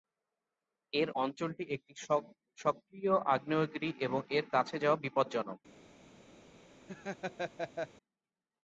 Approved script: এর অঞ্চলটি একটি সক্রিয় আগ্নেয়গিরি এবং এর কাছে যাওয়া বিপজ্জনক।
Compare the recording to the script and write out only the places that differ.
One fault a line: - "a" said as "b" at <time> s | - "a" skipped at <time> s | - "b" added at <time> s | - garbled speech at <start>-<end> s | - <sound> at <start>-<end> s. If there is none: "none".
- laugh at 6.9-7.9 s